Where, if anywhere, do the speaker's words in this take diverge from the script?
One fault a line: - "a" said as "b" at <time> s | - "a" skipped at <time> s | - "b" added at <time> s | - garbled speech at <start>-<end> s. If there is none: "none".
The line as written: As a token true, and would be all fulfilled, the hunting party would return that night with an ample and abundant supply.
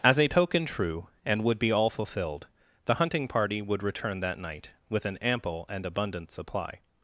none